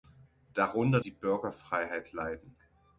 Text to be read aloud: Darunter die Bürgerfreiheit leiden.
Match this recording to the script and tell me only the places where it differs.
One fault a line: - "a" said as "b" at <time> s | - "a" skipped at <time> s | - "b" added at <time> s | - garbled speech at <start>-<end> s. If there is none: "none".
none